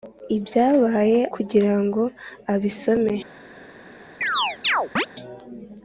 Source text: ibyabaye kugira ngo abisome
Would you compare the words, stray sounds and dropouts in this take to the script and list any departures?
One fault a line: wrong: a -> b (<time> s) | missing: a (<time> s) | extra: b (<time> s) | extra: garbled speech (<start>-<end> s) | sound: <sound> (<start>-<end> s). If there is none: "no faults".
sound: chirp (4.2-5.1 s)